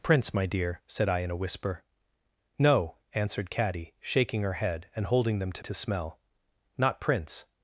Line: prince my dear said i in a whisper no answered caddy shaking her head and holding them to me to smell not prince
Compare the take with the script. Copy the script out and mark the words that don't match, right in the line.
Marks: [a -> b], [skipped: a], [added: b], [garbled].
prince my dear said i in a whisper no answered caddy shaking her head and holding them to [skipped: me] to smell not prince